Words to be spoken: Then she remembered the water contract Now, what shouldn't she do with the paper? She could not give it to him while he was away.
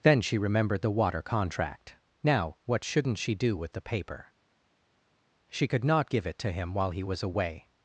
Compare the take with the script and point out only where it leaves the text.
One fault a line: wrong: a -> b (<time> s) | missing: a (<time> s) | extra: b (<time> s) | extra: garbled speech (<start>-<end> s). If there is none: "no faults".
no faults